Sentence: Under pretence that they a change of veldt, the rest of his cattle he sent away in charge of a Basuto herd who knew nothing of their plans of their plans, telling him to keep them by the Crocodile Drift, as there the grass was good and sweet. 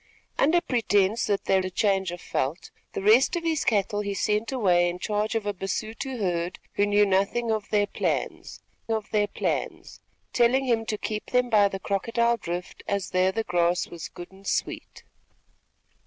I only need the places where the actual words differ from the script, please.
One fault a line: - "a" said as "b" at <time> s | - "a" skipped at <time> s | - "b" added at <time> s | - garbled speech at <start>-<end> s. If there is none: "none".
none